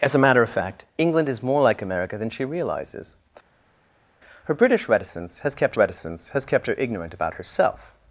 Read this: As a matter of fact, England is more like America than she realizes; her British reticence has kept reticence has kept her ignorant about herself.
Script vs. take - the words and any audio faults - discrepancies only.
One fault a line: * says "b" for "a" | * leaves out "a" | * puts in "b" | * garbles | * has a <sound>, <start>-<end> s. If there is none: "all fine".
all fine